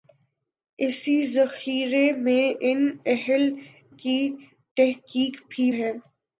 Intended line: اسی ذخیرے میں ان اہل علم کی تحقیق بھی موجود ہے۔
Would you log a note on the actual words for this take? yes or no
yes